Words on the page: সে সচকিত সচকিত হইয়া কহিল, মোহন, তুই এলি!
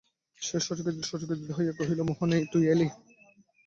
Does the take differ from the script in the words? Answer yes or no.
no